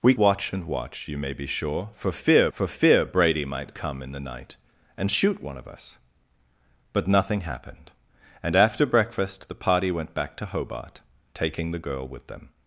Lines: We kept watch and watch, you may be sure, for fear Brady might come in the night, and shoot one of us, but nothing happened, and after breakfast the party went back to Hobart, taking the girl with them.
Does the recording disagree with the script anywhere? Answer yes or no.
yes